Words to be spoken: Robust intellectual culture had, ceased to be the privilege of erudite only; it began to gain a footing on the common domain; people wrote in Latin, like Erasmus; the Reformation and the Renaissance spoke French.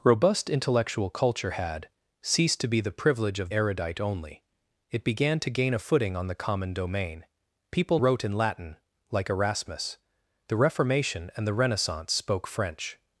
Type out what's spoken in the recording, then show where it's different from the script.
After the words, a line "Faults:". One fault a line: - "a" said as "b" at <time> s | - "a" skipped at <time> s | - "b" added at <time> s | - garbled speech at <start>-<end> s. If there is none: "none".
Robust intellectual culture had, ceased to be the privilege of erudite only; it began to gain a footing on the common domain; people wrote in Latin, like Erasmus; the Reformation and the Renaissance spoke French.
Faults:
none